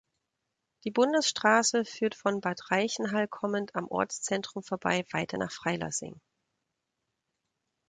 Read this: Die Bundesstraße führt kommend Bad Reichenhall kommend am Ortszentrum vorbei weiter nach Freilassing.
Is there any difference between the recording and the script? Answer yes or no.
yes